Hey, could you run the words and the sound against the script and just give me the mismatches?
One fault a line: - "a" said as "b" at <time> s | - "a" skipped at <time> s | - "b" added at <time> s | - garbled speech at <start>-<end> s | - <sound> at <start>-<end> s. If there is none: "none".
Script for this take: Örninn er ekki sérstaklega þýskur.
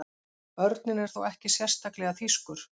- "þó" added at 1.1 s